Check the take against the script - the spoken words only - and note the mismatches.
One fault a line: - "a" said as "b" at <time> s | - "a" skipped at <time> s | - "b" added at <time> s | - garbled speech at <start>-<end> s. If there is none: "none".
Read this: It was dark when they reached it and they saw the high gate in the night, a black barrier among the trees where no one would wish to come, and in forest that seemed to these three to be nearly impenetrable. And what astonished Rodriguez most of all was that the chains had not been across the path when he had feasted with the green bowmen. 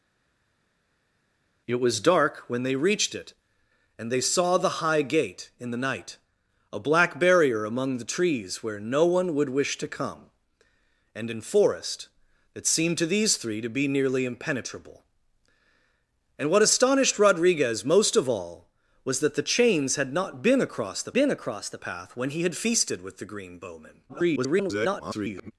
- "been across the" added at 21.1 s
- garbled speech at 24.1-25.5 s